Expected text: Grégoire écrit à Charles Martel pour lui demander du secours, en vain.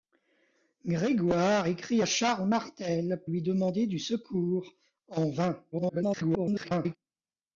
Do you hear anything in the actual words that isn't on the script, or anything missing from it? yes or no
yes